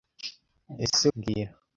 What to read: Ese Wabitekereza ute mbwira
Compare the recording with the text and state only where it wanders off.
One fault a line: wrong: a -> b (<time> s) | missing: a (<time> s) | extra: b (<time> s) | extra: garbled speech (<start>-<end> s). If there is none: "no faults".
missing: Wabitekereza ute (1.1 s)